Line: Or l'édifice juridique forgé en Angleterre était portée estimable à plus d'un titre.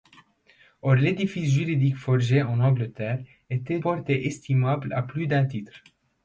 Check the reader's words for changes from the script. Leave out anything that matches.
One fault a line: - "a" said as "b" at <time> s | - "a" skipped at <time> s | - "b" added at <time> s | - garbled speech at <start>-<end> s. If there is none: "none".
none